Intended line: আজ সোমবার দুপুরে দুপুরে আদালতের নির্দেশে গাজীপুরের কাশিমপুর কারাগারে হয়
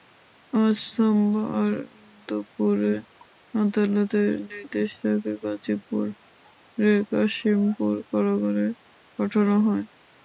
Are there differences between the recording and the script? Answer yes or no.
yes